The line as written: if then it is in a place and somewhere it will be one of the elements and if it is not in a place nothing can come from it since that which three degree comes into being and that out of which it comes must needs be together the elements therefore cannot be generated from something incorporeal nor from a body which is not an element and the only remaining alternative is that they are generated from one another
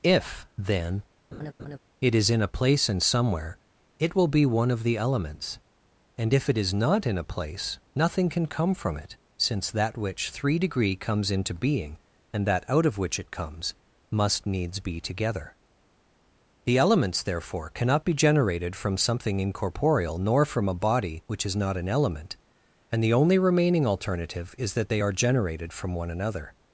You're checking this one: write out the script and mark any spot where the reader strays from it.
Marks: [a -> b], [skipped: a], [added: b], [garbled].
if then it is in a place and somewhere it will be one of the elements and if it is not in a place nothing can come from it since that which three degree comes into being and that out of which it comes must needs be together the elements therefore cannot be generated from something incorporeal nor from a body which is not an element and the only remaining alternative is that they are generated from one another